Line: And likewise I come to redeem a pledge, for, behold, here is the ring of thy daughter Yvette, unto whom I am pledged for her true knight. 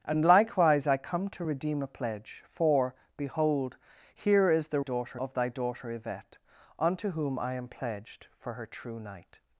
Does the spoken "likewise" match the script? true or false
true